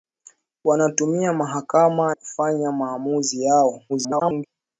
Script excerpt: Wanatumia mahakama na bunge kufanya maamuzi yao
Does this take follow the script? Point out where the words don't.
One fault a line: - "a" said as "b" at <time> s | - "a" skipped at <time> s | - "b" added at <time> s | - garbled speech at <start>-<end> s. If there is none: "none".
- "na bunge" skipped at 2.1 s
- garbled speech at 3.9-4.5 s